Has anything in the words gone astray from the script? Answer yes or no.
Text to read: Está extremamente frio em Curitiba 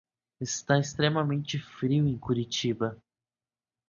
no